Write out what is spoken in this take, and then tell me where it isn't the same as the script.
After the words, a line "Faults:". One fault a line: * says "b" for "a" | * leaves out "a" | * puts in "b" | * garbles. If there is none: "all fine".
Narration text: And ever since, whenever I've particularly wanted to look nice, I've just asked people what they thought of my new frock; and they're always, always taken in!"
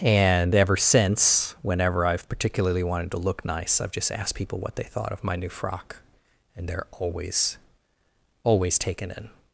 And ever since, whenever I've particularly wanted to look nice, I've just asked people what they thought of my new frock; and they're always, always taken in!"
Faults:
all fine